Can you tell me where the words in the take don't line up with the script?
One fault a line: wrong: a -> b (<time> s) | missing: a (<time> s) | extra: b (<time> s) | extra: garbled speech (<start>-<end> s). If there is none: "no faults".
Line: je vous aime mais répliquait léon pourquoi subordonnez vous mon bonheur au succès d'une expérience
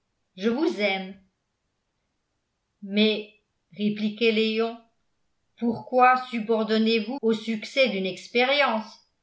missing: mon bonheur (7.2 s)